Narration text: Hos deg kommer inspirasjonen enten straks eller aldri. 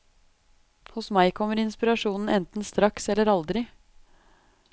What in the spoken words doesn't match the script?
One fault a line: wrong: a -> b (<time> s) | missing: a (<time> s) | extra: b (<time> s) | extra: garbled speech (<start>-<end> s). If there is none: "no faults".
wrong: deg -> meg (1.2 s)